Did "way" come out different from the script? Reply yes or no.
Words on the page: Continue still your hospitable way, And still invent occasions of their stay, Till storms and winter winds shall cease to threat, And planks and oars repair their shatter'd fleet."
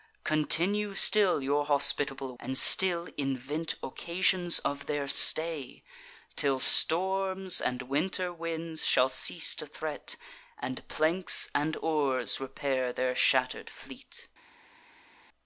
yes